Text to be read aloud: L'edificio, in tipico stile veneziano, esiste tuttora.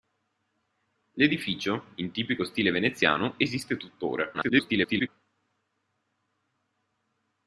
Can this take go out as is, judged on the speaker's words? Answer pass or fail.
fail